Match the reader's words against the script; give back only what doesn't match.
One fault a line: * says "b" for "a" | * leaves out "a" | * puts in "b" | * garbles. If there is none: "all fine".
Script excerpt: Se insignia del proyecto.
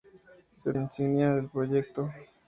all fine